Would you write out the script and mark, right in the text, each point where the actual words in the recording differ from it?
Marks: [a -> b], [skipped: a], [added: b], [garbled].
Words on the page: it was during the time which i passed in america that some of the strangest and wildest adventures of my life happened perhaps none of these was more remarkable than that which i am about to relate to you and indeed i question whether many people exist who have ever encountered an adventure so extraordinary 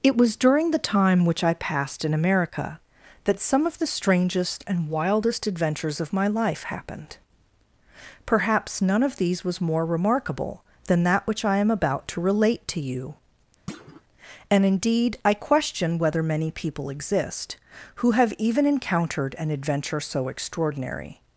it was during the time which i passed in america that some of the strangest and wildest adventures of my life happened perhaps none of these was more remarkable than that which i am about to relate to you and indeed i question whether many people exist who have [ever -> even] encountered an adventure so extraordinary